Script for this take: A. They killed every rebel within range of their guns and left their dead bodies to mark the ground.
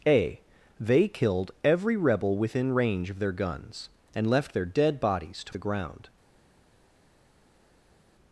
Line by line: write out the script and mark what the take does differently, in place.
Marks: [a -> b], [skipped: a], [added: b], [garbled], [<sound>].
A. They killed every rebel within range of their guns and left their dead bodies to [skipped: mark] the ground.